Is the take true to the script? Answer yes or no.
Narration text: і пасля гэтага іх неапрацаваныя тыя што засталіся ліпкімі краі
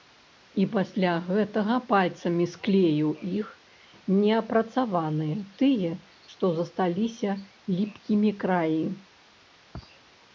no